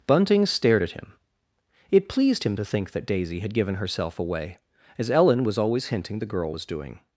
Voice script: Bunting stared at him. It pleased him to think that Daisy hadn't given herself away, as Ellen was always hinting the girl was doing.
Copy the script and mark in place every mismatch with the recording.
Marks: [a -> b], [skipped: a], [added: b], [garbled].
Bunting stared at him. It pleased him to think that Daisy [hadn't -> had] given herself away, as Ellen was always hinting the girl was doing.